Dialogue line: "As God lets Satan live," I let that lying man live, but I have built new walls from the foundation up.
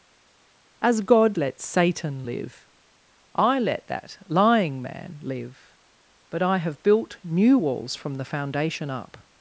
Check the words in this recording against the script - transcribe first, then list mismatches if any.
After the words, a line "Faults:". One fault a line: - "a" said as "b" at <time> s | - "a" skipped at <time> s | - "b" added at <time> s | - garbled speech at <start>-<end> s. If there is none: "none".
"As God lets Satan live," I let that lying man live, but I have built new walls from the foundation up.
Faults:
none